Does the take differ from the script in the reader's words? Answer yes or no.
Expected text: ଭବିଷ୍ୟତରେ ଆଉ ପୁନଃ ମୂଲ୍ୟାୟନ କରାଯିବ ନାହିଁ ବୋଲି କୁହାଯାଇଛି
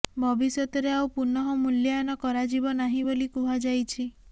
no